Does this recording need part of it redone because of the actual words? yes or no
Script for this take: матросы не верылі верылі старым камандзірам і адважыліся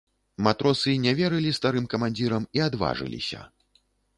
yes